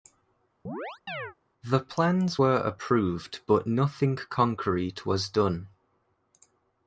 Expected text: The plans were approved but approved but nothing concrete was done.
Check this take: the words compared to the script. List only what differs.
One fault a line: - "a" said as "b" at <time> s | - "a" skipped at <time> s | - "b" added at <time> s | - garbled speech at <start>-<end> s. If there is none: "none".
- "approved but" skipped at 3.7 s